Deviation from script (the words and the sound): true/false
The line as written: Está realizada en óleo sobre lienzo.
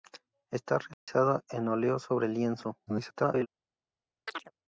true